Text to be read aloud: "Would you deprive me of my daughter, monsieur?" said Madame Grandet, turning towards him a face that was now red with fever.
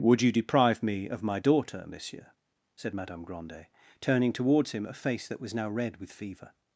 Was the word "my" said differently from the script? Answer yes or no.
no